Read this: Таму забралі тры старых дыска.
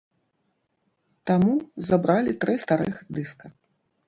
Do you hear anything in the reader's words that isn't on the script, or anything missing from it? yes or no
no